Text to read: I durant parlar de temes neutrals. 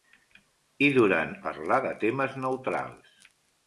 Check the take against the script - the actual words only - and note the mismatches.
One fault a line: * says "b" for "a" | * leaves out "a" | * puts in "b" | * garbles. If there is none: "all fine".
all fine